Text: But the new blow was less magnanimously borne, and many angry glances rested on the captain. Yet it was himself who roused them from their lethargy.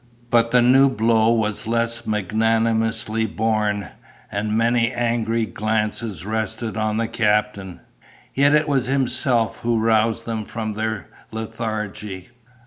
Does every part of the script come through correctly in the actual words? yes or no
yes